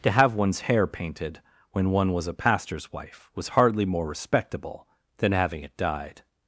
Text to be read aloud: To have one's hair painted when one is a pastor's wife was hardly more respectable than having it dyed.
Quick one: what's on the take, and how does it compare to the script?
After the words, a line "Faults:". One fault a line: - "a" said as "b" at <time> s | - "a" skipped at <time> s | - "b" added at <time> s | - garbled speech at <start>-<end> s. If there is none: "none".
To have one's hair painted when one was a pastor's wife was hardly more respectable than having it dyed.
Faults:
- "is" said as "was" at 2.1 s